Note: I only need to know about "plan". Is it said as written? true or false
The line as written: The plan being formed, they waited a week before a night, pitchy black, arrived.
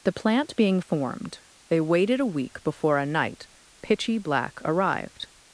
false